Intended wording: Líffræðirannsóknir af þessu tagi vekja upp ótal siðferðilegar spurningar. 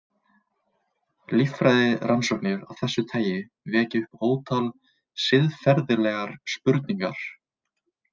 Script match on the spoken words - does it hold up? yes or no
yes